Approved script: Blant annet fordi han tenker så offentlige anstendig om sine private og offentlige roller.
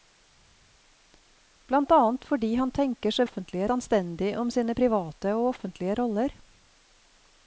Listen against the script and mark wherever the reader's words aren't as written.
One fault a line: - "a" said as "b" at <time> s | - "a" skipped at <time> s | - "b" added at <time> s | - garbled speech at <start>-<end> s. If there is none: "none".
none